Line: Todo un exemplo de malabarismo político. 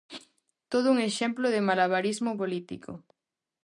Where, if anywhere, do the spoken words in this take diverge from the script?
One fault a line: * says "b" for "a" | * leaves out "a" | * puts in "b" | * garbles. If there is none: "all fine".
all fine